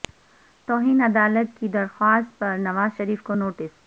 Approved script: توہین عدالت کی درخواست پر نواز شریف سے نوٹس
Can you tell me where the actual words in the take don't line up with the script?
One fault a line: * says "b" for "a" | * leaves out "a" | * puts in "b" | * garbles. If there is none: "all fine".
* says "کو" for "سے"